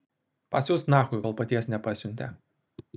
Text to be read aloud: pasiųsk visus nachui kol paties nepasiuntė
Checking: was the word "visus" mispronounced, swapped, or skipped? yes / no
yes